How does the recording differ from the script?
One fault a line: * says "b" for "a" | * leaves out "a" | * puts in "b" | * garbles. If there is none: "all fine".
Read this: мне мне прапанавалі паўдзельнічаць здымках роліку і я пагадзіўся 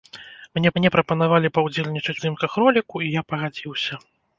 all fine